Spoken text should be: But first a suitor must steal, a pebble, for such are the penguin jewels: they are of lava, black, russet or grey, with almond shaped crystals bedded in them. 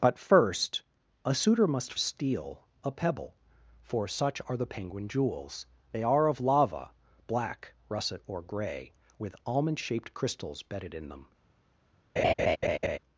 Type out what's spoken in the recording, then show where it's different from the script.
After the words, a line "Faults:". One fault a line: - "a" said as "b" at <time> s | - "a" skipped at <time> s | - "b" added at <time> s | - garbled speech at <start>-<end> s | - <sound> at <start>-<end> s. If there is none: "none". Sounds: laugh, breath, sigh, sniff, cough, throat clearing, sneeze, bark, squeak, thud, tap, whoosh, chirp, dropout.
But first a suitor must steal, a pebble, for such are the penguin jewels: they are of lava, black, russet or grey, with almond shaped crystals bedded in them.
Faults:
- laugh at 12.2-13.0 s